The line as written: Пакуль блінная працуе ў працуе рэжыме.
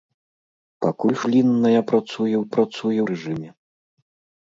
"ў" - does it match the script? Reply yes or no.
yes